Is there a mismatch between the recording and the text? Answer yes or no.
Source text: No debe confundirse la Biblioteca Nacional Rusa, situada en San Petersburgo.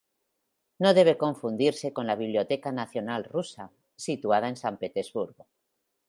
yes